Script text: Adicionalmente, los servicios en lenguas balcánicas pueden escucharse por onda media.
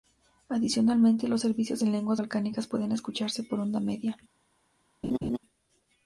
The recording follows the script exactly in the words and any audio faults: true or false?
false